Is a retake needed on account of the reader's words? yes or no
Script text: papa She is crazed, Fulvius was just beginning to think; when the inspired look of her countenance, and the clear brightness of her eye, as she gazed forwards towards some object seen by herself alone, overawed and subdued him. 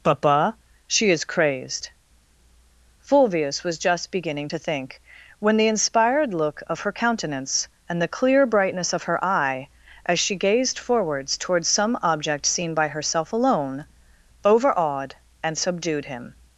no